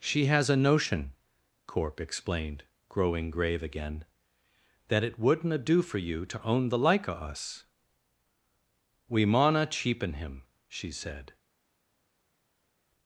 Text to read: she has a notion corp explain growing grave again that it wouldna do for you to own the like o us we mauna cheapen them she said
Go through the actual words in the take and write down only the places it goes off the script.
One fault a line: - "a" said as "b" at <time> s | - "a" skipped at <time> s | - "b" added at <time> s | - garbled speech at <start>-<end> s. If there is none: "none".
- "explain" said as "explained" at 2.0 s
- "them" said as "him" at 10.1 s